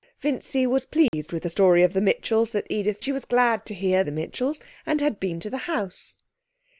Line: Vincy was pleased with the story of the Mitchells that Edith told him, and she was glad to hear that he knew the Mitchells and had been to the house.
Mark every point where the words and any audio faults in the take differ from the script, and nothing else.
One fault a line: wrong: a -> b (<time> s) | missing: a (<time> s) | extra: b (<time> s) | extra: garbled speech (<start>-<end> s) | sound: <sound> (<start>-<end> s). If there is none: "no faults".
sound: dropout (1.1-1.1 s)
missing: told him and (3.0 s)
missing: that he knew (4.0 s)